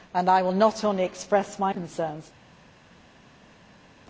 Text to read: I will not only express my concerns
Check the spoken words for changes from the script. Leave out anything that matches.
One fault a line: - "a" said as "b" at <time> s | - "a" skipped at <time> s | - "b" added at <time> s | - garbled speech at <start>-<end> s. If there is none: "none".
none